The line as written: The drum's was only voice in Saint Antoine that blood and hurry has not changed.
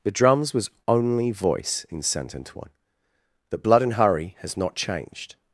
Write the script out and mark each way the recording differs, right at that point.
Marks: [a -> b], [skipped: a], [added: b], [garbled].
The drum's was only voice in Saint Antoine that blood and hurry has not changed.